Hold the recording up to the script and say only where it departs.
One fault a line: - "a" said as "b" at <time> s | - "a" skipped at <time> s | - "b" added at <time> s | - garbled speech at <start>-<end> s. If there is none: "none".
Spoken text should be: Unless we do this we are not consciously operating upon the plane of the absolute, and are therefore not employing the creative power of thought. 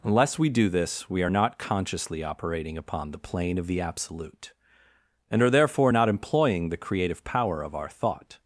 - "our" added at 7.7 s